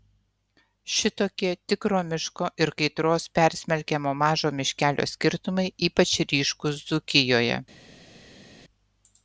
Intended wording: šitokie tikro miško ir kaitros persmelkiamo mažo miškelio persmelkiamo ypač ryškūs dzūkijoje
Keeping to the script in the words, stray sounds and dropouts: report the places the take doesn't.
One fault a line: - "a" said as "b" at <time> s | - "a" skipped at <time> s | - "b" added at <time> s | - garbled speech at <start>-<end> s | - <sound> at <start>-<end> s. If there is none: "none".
- "persmelkiamo" said as "skirtumai" at 5.1 s